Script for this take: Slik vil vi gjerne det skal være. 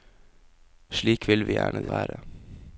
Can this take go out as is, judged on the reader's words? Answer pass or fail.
fail